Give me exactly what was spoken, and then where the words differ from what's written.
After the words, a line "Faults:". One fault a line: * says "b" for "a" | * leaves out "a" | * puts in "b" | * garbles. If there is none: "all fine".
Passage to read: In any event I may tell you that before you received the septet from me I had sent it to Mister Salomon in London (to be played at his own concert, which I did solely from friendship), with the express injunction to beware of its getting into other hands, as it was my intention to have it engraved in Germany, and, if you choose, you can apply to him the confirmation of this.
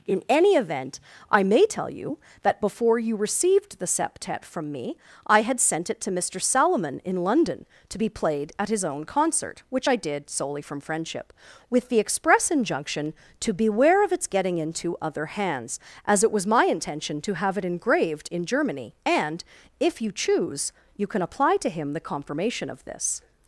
In any event I may tell you that before you received the septet from me I had sent it to Mister Salomon in London (to be played at his own concert, which I did solely from friendship), with the express injunction to beware of its getting into other hands, as it was my intention to have it engraved in Germany, and, if you choose, you can apply to him the confirmation of this.
Faults:
all fine